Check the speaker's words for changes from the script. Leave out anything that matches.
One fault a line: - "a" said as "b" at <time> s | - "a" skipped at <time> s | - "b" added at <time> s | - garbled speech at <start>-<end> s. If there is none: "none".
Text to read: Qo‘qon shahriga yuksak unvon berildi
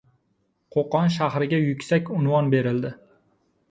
none